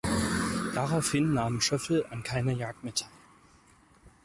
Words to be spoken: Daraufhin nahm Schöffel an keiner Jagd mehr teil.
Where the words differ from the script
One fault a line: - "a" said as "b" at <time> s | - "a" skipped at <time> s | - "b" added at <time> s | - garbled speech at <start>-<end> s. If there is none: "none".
none